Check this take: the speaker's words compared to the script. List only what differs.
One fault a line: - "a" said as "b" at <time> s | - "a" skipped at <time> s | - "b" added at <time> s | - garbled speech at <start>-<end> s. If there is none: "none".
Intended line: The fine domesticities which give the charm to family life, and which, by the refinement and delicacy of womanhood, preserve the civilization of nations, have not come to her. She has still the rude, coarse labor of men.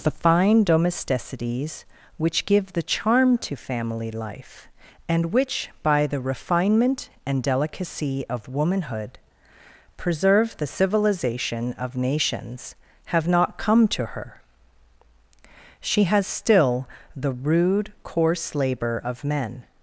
none